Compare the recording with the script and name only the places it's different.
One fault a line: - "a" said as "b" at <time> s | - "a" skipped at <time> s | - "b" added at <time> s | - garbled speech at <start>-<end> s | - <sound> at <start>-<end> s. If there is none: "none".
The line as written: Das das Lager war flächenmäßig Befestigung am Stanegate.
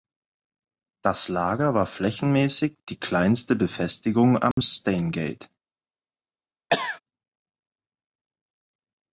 - "das" skipped at 1.3 s
- "die kleinste" added at 2.9 s
- dropout at 4.5-4.6 s
- cough at 6.7-7.0 s